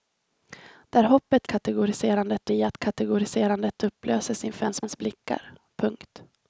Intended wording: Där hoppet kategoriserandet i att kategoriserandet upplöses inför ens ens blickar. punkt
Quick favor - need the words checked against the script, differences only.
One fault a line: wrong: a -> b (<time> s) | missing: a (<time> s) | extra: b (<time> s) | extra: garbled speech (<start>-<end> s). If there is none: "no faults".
no faults